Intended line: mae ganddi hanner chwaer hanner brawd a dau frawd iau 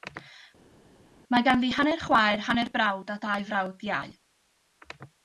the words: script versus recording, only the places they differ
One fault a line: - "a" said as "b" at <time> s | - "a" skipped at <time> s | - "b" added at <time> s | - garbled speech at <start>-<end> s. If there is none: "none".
none